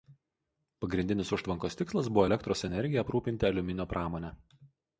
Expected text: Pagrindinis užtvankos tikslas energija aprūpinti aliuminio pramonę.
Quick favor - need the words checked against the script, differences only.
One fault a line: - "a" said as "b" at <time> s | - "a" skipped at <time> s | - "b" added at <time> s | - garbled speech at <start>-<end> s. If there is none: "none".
- "buvo elektros" added at 2.1 s